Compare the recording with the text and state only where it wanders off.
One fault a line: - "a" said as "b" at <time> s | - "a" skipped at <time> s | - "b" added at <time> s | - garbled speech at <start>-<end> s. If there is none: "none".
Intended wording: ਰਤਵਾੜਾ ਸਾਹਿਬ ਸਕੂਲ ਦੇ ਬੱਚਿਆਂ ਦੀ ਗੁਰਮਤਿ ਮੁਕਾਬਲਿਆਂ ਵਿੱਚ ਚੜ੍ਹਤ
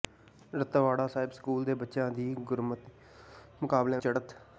- "ਵਿੱਚ" skipped at 4.0 s